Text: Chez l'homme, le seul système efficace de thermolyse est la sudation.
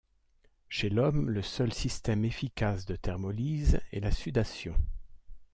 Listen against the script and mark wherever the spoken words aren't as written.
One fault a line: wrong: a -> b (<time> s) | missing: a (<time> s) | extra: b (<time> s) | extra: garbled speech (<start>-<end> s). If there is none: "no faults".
no faults